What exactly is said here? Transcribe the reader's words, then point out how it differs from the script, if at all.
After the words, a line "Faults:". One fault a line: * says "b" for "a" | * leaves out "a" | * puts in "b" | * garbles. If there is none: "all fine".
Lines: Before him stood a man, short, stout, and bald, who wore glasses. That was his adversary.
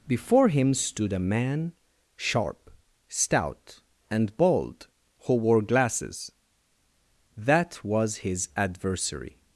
Before him stood a man, sharp, stout, and bald, who wore glasses. That was his adversary.
Faults:
* says "sharp" for "short"